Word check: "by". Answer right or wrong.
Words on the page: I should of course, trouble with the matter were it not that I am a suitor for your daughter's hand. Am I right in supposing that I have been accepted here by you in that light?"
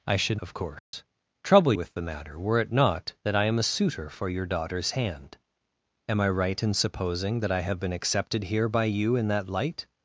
right